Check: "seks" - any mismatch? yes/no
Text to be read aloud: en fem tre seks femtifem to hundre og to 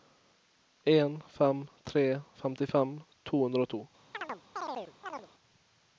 yes